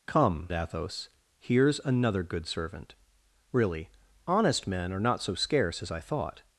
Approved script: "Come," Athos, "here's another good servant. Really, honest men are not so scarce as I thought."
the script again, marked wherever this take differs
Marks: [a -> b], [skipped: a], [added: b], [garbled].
"Come," Athos, "here's another good servant. Really, honest men are not so scarce as I thought."